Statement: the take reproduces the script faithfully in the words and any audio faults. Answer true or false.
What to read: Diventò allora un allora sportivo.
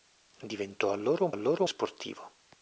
true